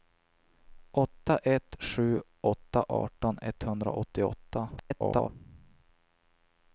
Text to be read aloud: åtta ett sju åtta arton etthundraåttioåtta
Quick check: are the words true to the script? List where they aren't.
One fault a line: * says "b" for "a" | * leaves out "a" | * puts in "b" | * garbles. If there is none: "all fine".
* garbles